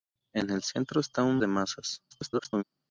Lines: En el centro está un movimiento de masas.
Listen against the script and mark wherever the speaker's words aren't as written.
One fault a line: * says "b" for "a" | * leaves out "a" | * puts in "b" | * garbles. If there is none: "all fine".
* leaves out "movimiento"
* garbles